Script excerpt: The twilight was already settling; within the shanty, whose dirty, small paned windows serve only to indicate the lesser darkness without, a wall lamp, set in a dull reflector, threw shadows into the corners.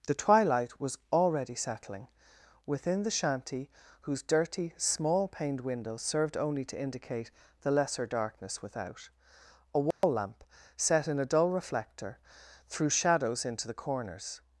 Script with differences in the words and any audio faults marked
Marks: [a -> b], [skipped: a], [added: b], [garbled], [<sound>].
The twilight was already settling; within the shanty, whose dirty, small paned windows [serve -> served] only to indicate the lesser darkness without, a wall [dropout] lamp, set in a dull reflector, threw shadows into the corners.